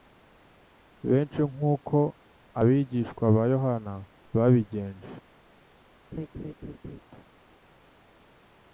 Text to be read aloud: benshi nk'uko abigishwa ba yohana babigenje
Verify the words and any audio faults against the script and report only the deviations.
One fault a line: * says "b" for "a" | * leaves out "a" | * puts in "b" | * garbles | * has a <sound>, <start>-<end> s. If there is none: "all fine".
* has a laugh, 6.1-7.0 s